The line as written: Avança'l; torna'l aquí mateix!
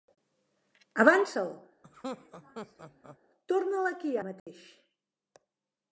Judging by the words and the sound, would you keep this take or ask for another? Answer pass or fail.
fail